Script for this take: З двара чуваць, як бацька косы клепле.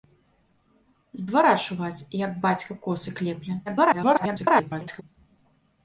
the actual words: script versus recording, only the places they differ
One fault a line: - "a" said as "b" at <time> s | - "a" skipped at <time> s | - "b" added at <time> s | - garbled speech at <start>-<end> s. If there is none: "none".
- garbled speech at 3.7-5.0 s